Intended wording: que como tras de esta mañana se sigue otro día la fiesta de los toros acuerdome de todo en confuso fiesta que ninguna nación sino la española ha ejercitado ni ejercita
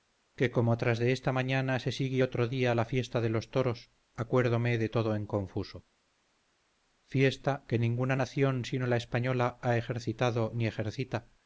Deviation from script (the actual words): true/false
false